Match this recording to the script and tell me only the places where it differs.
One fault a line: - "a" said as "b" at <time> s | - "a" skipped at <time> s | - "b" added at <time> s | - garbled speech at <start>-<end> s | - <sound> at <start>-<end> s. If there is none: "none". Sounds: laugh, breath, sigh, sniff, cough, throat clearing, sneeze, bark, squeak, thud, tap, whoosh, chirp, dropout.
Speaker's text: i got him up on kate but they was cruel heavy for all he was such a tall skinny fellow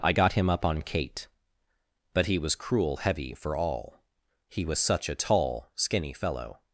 - "they" said as "he" at 2.2 s